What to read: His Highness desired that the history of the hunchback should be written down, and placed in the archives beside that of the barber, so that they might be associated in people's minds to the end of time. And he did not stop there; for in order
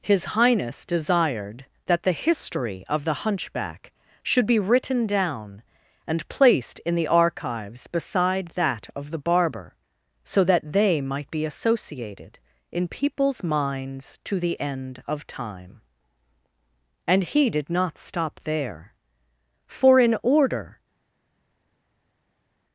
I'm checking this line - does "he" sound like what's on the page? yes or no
yes